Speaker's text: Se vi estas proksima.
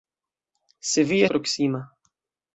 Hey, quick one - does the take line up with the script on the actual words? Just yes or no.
no